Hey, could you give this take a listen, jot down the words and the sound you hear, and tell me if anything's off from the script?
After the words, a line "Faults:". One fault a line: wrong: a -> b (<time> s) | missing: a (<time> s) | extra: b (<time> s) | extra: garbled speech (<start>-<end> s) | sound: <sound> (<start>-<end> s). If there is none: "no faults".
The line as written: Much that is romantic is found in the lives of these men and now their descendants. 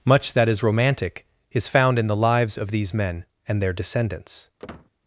Much that is romantic is found in the lives of these men and their descendants.
Faults:
missing: now (3.6 s)
sound: squeak (4.6-4.9 s)